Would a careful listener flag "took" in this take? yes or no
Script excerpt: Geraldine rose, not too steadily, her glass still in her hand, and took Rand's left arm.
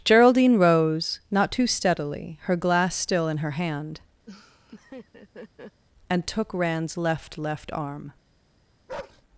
no